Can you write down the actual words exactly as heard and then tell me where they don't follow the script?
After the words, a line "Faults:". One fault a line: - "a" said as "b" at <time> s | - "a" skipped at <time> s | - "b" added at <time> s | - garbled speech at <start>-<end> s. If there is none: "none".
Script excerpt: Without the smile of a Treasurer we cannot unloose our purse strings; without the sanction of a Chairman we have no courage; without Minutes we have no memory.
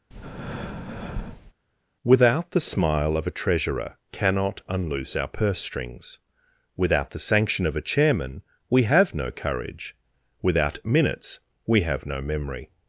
Without the smile of a Treasurer cannot unloose our purse strings; without the sanction of a Chairman we have no courage; without Minutes we have no memory.
Faults:
- "we" skipped at 4.0 s